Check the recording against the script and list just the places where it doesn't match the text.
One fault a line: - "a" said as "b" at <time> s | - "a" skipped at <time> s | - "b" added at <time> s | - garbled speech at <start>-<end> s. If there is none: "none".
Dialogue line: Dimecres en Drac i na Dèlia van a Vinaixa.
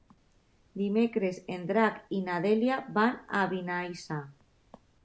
none